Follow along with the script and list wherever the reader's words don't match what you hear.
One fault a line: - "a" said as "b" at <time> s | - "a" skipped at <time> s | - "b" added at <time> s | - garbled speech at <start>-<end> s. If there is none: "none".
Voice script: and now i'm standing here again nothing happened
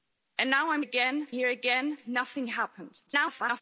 - "standing" said as "again" at 0.8 s
- garbled speech at 3.1-3.6 s